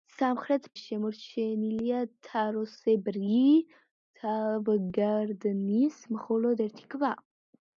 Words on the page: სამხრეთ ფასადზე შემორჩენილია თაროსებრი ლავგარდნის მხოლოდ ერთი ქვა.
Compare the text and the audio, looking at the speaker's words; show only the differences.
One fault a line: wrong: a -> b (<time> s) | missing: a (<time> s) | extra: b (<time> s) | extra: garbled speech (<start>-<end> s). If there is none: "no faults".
missing: ფასადზე (0.6 s)